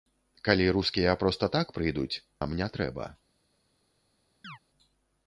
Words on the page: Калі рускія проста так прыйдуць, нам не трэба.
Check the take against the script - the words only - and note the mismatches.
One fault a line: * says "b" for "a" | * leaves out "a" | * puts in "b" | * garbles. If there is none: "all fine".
all fine